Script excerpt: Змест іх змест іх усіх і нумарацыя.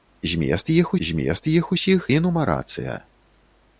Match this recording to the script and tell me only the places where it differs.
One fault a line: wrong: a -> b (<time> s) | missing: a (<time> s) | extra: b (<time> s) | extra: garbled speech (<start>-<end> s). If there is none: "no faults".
no faults